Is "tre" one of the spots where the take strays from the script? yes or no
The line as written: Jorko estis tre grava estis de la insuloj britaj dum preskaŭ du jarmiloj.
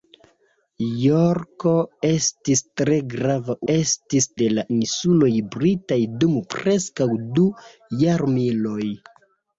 no